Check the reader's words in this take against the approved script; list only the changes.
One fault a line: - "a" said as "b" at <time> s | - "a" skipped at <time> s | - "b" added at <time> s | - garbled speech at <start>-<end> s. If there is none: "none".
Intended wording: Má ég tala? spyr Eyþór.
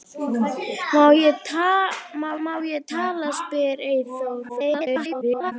- "má" added at 2.4 s
- garbled speech at 4.5-5.5 s